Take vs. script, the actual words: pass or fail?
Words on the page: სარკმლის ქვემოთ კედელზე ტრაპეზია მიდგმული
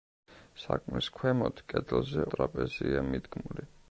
pass